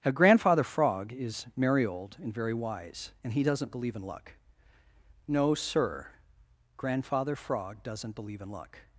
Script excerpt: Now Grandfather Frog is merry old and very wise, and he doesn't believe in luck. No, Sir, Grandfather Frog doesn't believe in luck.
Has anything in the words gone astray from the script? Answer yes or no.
no